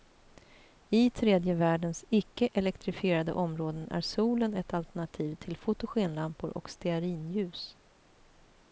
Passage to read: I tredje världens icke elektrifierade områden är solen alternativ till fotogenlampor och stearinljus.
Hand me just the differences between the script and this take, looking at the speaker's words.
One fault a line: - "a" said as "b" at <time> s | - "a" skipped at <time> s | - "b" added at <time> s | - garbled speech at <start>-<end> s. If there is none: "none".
- "ett" added at 4.5 s